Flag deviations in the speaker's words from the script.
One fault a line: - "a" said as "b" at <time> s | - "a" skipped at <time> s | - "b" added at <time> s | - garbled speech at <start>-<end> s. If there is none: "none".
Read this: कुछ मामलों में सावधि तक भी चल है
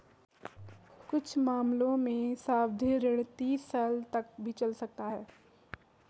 - "ऋण तीस साल" added at 3.0 s
- "सकता" added at 4.8 s